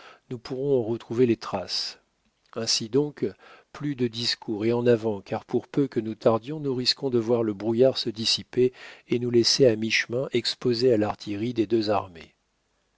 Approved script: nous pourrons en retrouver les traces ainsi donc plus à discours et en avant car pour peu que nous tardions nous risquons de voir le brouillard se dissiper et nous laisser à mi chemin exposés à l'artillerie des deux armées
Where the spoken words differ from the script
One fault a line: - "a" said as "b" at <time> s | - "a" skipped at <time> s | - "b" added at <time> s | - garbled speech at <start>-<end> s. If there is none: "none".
- "à" said as "de" at 4.0 s